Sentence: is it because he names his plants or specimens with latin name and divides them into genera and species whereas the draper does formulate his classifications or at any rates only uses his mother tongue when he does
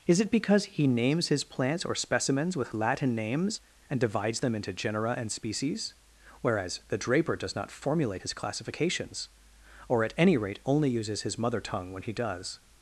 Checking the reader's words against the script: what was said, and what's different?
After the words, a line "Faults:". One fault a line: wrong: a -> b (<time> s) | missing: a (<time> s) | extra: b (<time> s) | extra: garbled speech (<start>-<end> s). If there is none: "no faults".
is it because he names his plants or specimens with latin names and divides them into genera and species whereas the draper does not formulate his classifications or at any rate only uses his mother tongue when he does
Faults:
wrong: name -> names (3.1 s)
extra: not (7.5 s)
wrong: rates -> rate (10.4 s)